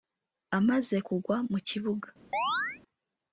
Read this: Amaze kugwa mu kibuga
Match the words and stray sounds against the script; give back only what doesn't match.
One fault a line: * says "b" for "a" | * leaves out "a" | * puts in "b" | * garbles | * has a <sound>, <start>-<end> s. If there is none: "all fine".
* has a chirp, 2.3-2.8 s